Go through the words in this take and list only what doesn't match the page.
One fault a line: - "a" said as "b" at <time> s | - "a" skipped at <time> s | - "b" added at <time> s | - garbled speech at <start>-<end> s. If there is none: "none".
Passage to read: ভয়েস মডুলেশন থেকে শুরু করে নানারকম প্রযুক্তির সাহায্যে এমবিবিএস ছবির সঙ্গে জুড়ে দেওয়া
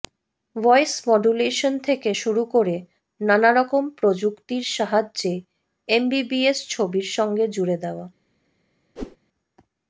none